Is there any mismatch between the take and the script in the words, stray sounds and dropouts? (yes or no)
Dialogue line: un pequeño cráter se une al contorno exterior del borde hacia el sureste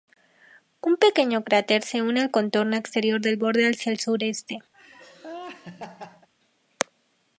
yes